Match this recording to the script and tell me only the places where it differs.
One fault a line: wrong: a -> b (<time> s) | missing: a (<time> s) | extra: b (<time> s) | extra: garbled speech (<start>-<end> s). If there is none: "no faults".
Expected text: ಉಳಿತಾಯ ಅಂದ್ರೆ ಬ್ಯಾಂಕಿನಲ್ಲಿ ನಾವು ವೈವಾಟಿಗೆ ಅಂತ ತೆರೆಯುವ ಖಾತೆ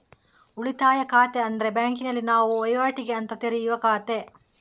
extra: ಖಾತೆ (1.0 s)